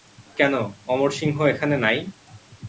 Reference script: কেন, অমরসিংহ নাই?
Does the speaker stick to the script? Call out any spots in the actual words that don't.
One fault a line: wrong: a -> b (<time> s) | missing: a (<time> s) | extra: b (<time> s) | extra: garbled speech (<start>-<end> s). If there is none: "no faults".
extra: এখানে (1.4 s)